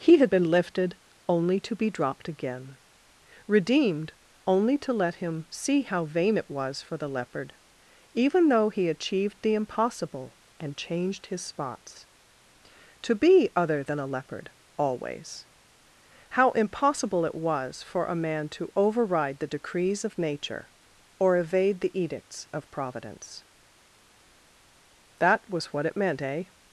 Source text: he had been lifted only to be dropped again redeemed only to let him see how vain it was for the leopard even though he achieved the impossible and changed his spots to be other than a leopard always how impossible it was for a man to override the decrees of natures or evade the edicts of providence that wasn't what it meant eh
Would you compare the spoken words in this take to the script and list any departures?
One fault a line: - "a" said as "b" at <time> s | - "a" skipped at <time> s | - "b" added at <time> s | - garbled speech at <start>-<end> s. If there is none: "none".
- "natures" said as "nature" at 20.2 s
- "wasn't" said as "was" at 25.5 s